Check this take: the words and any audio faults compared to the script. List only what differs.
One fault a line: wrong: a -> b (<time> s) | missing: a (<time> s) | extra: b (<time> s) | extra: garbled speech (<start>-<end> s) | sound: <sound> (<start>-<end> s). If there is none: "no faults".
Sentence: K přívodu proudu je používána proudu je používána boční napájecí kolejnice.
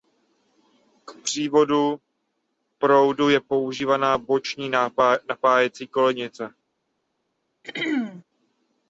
missing: proudu je používána (4.2 s)
sound: throat clearing (7.6-8.2 s)